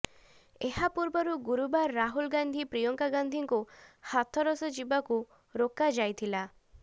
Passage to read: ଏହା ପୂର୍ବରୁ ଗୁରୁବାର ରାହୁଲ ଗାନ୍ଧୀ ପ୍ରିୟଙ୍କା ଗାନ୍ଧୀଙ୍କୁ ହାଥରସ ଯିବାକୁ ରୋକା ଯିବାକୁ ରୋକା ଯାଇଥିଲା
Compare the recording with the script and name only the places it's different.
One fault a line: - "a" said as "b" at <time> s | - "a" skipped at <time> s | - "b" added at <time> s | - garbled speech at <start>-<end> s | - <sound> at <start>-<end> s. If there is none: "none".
- "ଯିବାକୁ ରୋକା" skipped at 5.9 s